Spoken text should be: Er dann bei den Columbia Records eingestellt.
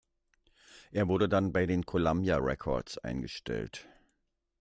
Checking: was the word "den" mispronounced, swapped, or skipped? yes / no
no